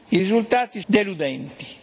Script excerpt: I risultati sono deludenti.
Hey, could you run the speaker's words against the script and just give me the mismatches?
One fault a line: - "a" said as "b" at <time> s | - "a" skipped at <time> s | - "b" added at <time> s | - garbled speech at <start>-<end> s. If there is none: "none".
- "sono" skipped at 0.8 s